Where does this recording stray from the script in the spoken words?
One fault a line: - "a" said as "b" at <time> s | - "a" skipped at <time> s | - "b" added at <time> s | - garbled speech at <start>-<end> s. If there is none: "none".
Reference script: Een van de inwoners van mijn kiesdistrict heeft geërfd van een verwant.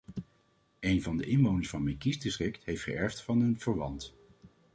none